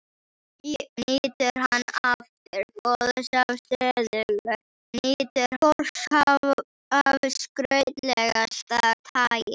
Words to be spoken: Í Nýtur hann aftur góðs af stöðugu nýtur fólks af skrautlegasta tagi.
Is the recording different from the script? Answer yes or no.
no